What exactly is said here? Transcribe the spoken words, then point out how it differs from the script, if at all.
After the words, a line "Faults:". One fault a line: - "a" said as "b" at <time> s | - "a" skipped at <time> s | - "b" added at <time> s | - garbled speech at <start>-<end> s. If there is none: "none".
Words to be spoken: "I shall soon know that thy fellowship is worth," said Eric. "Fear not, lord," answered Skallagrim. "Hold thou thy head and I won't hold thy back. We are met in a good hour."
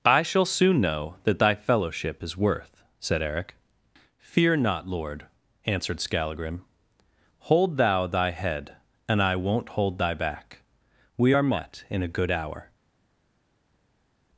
"I shall soon know that thy fellowship is worth," said Eric. "Fear not, lord," answered Skallagrim. "Hold thou thy head and I won't hold thy back. We are met in a good hour."
Faults:
none